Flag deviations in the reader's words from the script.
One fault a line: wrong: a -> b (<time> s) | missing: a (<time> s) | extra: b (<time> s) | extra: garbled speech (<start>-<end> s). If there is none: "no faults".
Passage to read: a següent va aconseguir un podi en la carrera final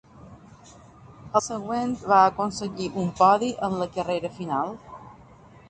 no faults